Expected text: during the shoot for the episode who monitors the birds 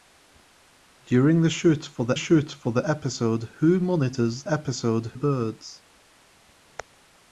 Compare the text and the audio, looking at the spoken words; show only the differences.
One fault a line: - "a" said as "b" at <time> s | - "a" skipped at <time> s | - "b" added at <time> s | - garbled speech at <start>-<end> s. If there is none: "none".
- "shoot for the" added at 2.2 s
- "the" said as "episode" at 4.5 s